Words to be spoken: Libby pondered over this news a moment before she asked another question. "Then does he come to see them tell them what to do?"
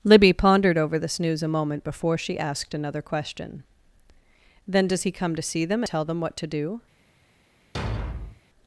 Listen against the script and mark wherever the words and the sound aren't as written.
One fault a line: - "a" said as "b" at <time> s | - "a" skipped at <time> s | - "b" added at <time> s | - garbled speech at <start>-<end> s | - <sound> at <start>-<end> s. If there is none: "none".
- thud at 7.7-8.4 s